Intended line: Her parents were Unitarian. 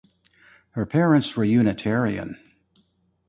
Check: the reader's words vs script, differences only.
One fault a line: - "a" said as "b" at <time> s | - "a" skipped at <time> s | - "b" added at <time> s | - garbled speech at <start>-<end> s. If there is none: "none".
none